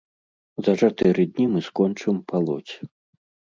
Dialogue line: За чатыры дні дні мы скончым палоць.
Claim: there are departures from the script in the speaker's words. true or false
true